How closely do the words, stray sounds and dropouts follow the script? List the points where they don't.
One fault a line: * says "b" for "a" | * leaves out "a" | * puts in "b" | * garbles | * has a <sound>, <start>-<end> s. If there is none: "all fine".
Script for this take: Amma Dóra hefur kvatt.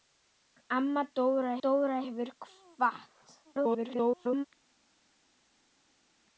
* puts in "Dóra"
* garbles